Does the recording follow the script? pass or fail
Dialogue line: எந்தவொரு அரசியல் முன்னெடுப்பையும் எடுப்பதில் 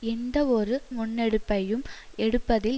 fail